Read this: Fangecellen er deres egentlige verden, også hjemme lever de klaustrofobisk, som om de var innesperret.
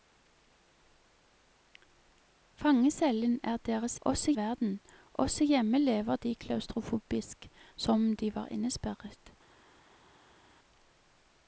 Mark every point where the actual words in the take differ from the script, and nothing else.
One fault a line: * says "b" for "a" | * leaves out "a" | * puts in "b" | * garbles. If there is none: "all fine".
* says "også" for "egentlige"